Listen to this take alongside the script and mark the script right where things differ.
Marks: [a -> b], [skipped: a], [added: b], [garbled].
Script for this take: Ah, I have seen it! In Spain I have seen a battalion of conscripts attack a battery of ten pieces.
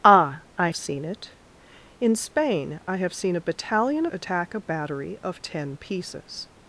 Ah, I [skipped: have] seen it! In Spain I have seen a battalion [skipped: of conscripts] attack a battery of ten pieces.